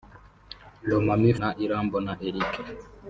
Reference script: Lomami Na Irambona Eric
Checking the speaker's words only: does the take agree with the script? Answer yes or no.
yes